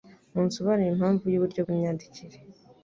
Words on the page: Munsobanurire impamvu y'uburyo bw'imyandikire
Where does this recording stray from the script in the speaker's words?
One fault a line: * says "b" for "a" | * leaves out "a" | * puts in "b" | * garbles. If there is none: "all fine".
all fine